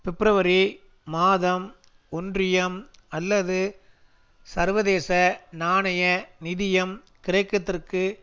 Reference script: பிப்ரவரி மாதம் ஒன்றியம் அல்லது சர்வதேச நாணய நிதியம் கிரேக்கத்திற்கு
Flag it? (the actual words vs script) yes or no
no